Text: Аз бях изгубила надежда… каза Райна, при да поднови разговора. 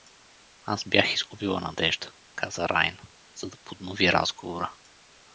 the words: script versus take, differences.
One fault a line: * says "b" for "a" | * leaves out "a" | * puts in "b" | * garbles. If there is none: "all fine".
* says "за" for "при"